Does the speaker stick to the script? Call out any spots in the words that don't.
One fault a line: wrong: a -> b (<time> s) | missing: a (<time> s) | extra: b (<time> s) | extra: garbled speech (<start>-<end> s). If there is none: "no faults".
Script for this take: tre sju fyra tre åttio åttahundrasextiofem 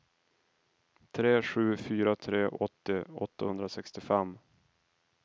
no faults